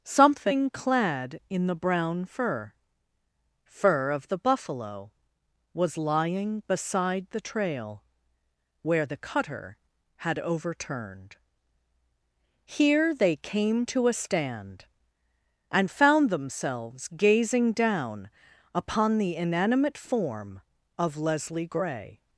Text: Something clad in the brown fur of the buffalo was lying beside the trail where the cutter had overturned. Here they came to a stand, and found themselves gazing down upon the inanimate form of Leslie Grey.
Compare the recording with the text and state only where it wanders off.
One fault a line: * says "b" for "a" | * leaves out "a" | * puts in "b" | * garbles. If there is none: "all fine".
* puts in "fur"